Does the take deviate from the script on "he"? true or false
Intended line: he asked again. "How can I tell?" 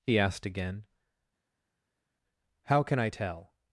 false